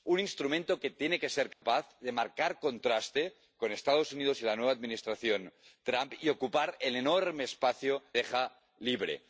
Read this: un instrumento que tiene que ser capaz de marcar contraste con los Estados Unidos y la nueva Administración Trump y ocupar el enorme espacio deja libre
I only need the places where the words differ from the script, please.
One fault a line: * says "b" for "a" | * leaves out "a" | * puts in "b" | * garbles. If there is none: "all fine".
all fine